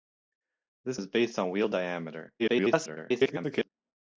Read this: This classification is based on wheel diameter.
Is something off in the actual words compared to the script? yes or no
yes